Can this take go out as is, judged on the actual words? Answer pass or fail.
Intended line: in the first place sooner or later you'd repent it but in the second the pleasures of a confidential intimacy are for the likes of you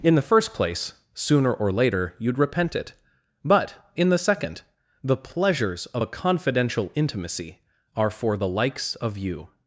pass